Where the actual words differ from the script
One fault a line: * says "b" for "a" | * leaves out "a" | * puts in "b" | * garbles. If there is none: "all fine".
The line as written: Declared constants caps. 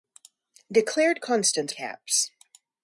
all fine